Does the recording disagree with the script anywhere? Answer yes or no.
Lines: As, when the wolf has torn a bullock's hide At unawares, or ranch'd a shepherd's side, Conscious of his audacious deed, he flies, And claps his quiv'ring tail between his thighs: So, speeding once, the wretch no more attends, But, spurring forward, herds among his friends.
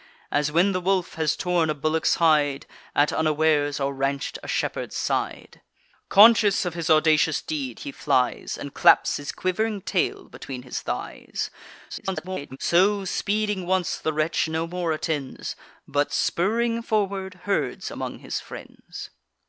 yes